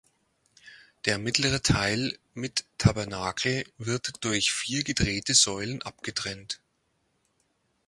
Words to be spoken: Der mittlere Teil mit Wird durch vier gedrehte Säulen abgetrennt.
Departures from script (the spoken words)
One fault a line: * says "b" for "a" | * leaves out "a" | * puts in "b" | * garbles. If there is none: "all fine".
* puts in "Tabernakel"